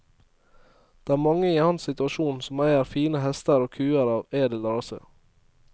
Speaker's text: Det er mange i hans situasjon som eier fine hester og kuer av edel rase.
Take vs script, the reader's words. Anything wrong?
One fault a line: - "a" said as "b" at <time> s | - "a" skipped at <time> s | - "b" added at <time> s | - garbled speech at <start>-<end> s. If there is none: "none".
none